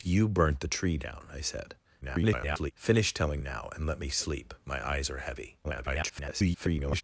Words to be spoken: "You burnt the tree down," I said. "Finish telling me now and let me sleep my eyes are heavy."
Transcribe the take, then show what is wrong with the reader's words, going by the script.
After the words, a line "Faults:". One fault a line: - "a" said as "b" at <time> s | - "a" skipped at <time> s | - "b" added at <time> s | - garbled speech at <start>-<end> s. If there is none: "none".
"You burnt the tree down," I said. [garbled] "Finish telling now and let me sleep my eyes are heavy." [garbled]
Faults:
- garbled speech at 2.0-2.7 s
- "me" skipped at 3.4 s
- garbled speech at 5.6-7.0 s